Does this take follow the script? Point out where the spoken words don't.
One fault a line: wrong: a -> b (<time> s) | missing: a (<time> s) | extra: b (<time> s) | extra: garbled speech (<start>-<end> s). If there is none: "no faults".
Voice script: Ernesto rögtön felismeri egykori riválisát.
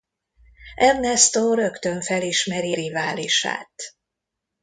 missing: egykori (2.8 s)